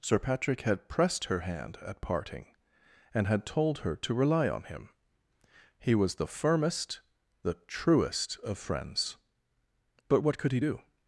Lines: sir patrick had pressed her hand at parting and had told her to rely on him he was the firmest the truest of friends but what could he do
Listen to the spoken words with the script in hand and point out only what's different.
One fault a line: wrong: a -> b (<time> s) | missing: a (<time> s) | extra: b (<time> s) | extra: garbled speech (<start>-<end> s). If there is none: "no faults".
no faults